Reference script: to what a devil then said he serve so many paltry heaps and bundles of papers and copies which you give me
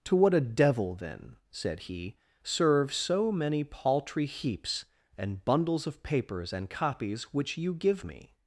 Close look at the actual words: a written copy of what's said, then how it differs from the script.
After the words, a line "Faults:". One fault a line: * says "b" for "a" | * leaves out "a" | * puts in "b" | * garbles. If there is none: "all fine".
to what a devil then said he serve so many paltry heaps and bundles of papers and copies which you give me
Faults:
all fine